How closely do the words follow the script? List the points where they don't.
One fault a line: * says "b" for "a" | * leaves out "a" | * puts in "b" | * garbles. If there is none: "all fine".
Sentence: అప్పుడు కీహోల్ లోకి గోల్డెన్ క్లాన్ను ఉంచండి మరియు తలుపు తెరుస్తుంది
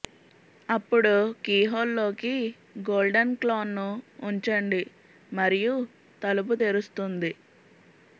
all fine